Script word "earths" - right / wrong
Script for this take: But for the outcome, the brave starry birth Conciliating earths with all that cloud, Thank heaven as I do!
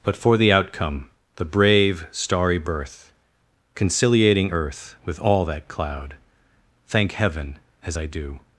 wrong